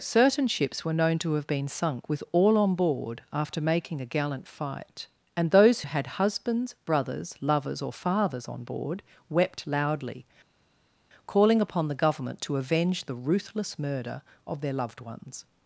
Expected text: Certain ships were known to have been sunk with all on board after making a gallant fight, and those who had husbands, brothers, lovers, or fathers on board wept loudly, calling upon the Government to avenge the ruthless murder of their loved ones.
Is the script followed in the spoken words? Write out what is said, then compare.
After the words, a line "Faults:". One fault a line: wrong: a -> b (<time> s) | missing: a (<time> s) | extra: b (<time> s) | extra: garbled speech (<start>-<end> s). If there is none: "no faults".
Certain ships were known to have been sunk with all on board after making a gallant fight, and those had husbands, brothers, lovers, or fathers on board wept loudly, calling upon the Government to avenge the ruthless murder of their loved ones.
Faults:
missing: who (5.8 s)